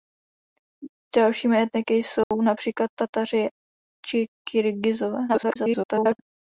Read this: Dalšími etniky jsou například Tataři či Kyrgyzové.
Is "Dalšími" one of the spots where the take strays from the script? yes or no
no